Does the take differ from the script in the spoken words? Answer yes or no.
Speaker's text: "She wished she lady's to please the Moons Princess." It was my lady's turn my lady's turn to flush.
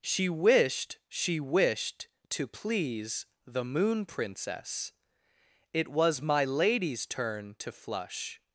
yes